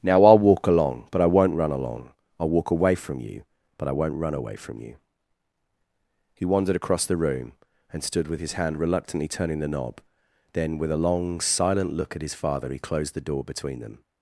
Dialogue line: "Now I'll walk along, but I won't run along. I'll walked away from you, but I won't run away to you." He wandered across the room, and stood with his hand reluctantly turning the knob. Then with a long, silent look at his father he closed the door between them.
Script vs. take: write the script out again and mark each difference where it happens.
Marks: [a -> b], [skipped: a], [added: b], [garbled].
"Now I'll walk along, but I won't run along. I'll [walked -> walk] away from you, but I won't run away [to -> from] you." He wandered across the room, and stood with his hand reluctantly turning the knob. Then with a long, silent look at his father he closed the door between them.